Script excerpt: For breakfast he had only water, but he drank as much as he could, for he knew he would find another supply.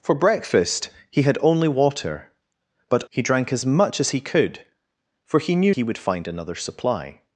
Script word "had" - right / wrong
right